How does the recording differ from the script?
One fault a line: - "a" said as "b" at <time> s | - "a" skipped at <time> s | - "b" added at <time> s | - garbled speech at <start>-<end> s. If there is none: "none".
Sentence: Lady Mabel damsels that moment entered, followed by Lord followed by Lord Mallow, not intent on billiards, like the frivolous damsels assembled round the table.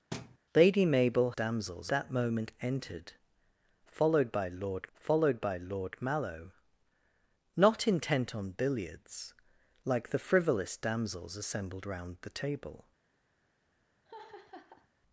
none